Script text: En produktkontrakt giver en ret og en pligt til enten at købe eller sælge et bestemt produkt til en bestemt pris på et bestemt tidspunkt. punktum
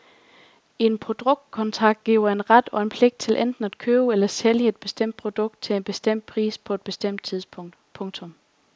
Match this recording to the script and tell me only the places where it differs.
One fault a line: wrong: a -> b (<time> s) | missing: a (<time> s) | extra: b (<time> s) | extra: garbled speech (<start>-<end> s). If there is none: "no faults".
no faults